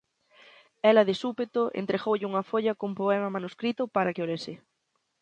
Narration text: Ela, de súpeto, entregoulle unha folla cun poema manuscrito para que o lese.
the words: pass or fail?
pass